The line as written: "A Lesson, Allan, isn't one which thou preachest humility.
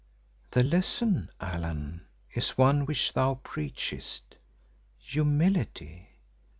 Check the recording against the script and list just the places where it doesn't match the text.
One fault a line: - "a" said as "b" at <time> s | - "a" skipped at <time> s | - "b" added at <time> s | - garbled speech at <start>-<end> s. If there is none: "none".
- "A" said as "The" at 0.5 s
- "isn't" said as "is" at 2.3 s